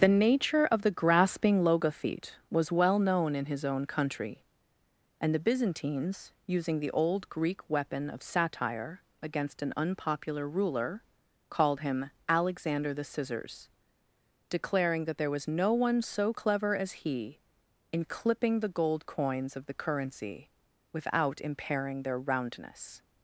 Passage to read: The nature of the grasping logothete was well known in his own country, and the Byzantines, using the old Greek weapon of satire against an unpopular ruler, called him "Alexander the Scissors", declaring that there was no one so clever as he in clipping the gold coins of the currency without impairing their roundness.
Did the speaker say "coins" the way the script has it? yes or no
yes